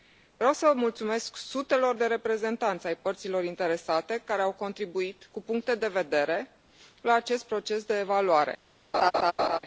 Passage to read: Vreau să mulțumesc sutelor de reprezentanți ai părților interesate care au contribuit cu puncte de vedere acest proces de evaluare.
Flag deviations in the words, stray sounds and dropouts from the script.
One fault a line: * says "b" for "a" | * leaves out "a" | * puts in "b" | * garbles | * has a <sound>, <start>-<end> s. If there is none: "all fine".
* puts in "la"
* has a laugh, 8.9-9.6 s